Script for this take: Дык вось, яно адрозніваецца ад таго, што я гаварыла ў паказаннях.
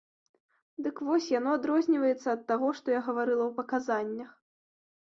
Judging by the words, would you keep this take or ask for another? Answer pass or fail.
pass